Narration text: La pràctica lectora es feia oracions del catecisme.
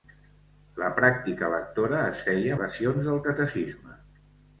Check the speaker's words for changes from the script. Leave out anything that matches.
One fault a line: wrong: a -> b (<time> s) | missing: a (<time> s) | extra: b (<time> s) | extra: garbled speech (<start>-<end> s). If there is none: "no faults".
no faults